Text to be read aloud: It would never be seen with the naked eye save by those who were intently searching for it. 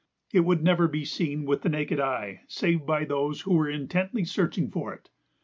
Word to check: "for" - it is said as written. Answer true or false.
true